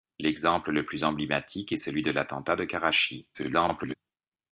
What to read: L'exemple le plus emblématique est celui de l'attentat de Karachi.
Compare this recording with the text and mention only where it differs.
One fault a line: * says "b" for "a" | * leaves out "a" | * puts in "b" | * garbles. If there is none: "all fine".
* garbles